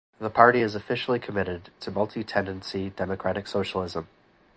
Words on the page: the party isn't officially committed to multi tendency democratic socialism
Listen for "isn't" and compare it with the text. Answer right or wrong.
wrong